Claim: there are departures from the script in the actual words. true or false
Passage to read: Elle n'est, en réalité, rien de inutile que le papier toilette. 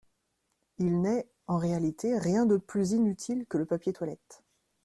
true